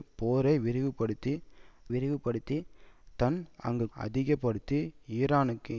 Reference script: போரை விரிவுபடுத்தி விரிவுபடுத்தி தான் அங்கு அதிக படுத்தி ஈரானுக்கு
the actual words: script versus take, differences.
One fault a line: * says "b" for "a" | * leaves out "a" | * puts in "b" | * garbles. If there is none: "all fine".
all fine